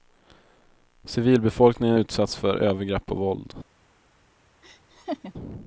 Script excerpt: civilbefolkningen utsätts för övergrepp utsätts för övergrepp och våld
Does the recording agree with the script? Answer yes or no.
no